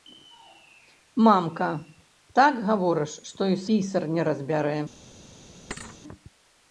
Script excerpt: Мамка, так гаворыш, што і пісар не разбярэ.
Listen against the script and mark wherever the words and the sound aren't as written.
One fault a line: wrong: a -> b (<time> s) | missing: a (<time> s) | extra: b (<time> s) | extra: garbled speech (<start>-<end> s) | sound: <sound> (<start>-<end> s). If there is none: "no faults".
sound: thud (5.7-6.0 s)